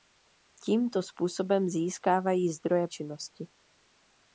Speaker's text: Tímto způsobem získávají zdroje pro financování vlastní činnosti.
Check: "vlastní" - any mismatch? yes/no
yes